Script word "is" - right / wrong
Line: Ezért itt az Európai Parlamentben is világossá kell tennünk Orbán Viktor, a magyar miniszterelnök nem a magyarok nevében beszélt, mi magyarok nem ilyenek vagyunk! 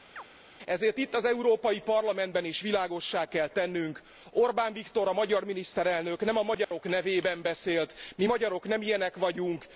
right